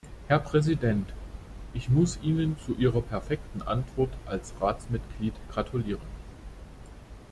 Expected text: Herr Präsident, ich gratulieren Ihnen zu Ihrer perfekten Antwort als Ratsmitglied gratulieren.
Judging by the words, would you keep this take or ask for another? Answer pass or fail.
fail